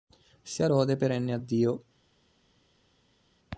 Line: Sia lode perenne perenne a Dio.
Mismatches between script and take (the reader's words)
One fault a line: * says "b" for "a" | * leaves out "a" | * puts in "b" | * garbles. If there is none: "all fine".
* leaves out "perenne"